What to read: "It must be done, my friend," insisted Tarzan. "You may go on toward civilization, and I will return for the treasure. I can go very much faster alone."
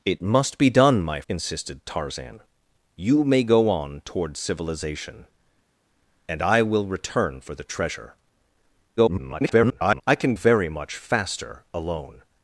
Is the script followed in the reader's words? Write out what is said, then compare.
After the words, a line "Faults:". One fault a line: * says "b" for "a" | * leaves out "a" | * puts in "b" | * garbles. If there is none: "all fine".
"It must be done, my," insisted Tarzan. "You may go on toward civilization, and I will return for the treasure. [garbled] I can very much faster alone."
Faults:
* leaves out "friend"
* garbles
* leaves out "go"